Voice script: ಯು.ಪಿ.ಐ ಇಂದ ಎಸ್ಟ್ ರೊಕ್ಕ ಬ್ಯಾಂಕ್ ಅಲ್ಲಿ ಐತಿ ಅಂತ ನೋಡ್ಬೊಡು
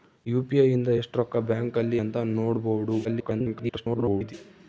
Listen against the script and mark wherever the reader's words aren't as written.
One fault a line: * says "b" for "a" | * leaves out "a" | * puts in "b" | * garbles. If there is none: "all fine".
* leaves out "ಐತಿ"
* garbles